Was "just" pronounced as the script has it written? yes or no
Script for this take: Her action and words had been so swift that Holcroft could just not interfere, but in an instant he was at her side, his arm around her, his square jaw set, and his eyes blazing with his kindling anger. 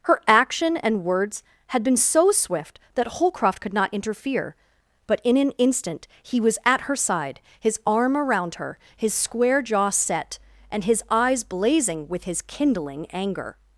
no